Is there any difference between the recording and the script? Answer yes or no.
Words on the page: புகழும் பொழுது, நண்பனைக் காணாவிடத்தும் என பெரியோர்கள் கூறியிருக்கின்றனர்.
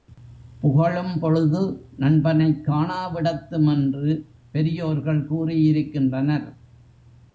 yes